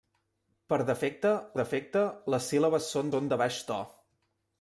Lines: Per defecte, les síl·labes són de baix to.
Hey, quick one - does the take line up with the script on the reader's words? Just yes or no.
no